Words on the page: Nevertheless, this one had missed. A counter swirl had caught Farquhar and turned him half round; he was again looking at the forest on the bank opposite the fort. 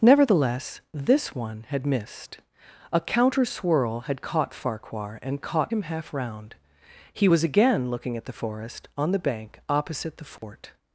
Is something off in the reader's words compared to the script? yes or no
yes